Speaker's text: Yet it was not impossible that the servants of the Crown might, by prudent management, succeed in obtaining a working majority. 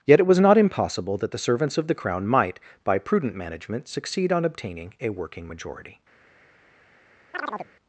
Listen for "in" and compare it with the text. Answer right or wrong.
wrong